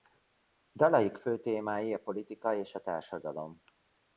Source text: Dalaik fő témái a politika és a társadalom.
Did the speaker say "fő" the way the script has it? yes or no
yes